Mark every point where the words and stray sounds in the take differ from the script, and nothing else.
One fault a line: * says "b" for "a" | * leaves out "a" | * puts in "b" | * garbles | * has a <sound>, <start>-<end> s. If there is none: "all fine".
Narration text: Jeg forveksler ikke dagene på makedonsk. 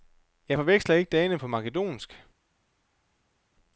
all fine